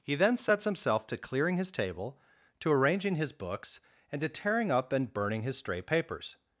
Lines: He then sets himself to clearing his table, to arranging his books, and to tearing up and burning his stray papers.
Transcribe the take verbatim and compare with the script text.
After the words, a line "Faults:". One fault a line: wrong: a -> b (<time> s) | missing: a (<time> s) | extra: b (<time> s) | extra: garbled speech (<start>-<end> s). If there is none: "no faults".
He then sets himself to clearing his table, to arranging his books, and to tearing up and burning his stray papers.
Faults:
no faults